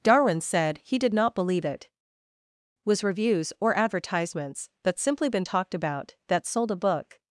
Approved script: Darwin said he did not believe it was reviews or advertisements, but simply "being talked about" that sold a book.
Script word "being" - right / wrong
wrong